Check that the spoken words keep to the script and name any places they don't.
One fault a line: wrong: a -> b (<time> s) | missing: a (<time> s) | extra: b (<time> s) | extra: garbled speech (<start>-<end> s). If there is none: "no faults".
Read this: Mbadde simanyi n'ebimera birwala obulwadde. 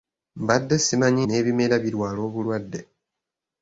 no faults